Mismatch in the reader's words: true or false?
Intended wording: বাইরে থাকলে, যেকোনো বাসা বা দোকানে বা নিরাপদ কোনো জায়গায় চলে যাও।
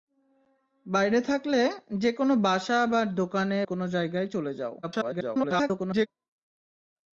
true